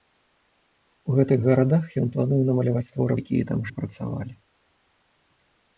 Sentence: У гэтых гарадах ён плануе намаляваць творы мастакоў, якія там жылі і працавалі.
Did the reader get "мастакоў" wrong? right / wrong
wrong